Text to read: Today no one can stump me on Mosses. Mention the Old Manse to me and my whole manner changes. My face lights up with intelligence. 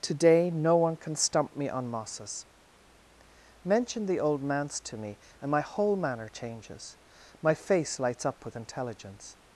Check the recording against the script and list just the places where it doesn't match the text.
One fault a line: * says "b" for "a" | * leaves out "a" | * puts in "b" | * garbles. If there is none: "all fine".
all fine